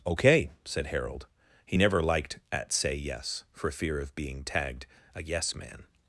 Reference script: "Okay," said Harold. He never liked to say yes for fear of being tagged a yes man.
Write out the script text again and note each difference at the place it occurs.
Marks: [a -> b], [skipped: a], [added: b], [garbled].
"Okay," said Harold. He never liked [to -> at] say yes for fear of being tagged a yes man.